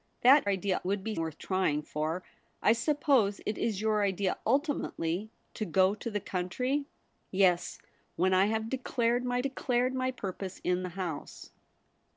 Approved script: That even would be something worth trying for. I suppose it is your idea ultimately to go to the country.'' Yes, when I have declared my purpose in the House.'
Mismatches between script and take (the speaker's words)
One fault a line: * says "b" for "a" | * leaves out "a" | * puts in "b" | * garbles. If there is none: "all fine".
* says "idea" for "even"
* leaves out "something"
* puts in "declared my"